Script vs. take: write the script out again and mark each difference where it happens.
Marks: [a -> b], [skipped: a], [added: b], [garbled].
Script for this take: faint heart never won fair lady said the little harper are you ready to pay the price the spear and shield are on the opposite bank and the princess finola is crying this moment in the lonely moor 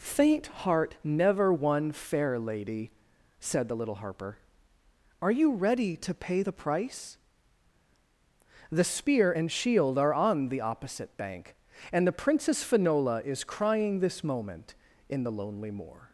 faint heart never won fair lady said the little harper are you ready to pay the price the spear and shield are on the opposite bank and the princess finola is crying this moment in the lonely moor